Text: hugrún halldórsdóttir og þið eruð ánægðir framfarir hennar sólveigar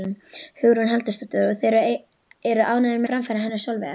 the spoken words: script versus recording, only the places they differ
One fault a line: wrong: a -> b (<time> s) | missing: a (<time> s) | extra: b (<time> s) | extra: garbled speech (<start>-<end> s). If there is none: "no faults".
no faults